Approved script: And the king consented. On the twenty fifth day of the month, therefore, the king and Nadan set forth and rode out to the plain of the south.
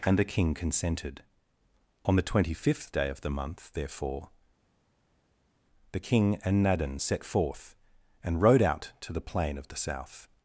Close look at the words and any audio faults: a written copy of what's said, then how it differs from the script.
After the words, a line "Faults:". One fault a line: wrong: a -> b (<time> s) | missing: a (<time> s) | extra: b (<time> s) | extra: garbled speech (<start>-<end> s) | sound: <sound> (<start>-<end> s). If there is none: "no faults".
And the king consented. On the twenty fifth day of the month, therefore, the king and Nadan set forth and rode out to the plain of the south.
Faults:
no faults